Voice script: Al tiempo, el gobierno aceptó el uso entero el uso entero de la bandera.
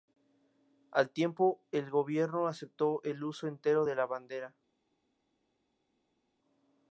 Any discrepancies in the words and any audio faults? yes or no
yes